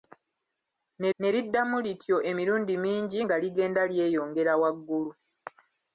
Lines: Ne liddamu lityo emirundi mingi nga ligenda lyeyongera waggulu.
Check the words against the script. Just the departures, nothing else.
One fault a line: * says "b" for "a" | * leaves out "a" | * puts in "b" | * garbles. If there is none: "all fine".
* puts in "ne"